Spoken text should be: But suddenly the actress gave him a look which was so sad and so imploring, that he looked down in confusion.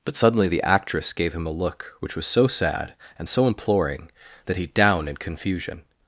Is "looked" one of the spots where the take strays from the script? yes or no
yes